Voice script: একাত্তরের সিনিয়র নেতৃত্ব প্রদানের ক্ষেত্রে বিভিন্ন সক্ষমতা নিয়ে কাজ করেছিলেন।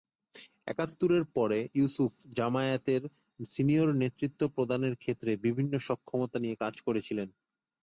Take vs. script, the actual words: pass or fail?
fail